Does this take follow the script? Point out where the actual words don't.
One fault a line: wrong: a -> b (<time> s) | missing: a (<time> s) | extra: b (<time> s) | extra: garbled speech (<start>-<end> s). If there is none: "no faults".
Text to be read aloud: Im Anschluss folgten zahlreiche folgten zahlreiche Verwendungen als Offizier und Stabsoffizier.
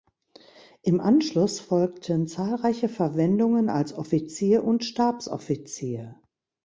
missing: folgten zahlreiche (2.9 s)